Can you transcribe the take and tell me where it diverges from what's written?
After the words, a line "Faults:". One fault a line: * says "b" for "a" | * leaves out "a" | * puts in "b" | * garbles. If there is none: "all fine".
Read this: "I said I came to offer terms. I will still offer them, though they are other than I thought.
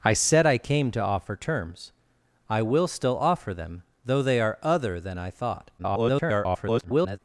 "I said I came to offer terms. I will still offer them, though they are other than I thought. [garbled]
Faults:
* garbles